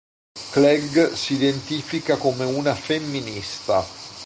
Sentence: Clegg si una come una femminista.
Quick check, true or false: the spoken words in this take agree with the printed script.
false